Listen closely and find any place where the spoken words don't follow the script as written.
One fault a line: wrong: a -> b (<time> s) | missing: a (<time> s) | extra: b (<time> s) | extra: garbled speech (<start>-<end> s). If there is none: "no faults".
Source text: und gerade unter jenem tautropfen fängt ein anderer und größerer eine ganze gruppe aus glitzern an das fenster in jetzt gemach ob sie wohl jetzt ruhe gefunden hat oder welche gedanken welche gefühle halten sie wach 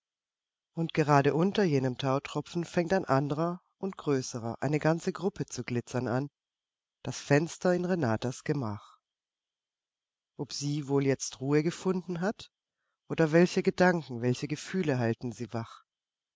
wrong: aus -> zu (5.5 s)
wrong: jetzt -> renatas (7.8 s)